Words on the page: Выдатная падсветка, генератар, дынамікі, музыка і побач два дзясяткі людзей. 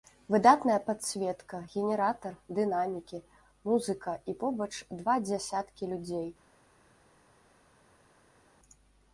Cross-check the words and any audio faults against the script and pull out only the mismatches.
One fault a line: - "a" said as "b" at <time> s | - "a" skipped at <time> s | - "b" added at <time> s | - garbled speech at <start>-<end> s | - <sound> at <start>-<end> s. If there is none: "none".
none